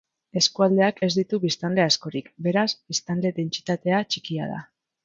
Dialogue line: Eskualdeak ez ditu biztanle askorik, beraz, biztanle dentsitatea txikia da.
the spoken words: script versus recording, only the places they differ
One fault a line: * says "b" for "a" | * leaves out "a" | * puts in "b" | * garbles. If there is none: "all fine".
all fine